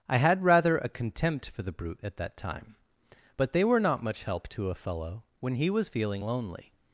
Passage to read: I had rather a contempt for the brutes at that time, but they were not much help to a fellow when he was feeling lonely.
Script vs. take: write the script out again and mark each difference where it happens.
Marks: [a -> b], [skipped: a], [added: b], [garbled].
I had rather a contempt for the [brutes -> brute] at that time, but they were not much help to a fellow when he was feeling lonely.